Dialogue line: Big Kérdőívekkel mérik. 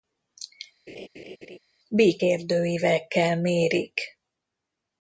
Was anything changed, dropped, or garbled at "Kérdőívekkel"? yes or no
no